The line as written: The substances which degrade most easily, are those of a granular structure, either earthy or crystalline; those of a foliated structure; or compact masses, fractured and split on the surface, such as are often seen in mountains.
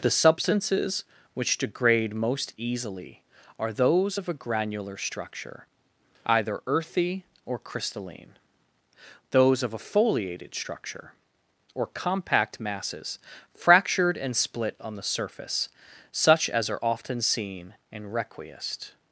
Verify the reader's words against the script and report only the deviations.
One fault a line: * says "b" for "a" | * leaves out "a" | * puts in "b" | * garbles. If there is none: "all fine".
* says "requiest" for "mountains"